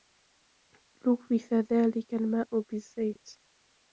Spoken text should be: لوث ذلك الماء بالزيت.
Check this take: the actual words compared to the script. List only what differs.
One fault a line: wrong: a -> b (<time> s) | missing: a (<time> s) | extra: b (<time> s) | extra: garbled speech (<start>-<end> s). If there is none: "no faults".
no faults